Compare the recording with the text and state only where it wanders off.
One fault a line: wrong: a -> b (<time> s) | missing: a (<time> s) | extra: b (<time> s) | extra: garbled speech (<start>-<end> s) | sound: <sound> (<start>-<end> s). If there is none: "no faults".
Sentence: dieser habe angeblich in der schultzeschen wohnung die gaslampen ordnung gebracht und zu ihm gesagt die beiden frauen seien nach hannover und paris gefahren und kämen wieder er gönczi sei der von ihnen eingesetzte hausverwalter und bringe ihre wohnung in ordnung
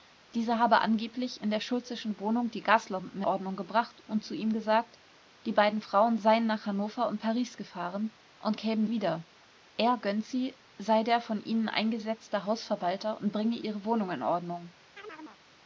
sound: chirp (15.0-15.4 s)